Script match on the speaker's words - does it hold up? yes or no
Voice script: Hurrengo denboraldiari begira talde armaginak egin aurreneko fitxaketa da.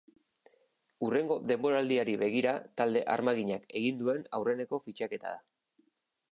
no